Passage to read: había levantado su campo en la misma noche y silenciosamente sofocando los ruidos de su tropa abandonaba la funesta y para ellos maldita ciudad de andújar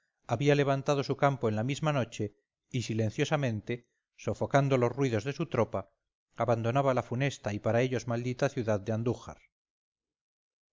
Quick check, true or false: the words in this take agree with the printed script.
true